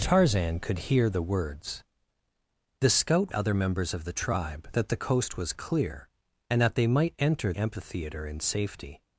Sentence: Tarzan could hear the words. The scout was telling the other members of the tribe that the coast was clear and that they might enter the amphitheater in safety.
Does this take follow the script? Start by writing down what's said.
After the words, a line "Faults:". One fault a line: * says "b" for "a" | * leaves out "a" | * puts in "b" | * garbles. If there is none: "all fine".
Tarzan could hear the words. The scout other members of the tribe that the coast was clear and that they might enter amphitheater in safety.
Faults:
* leaves out "was telling the"
* leaves out "the"